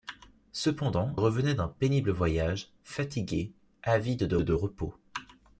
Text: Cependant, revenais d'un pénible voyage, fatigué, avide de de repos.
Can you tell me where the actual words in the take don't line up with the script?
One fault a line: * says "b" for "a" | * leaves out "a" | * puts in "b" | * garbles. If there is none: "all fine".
all fine